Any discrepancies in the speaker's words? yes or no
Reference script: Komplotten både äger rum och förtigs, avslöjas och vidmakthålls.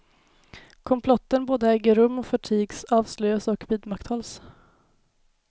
no